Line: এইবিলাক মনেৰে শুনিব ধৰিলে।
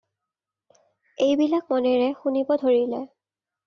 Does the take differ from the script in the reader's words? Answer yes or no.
no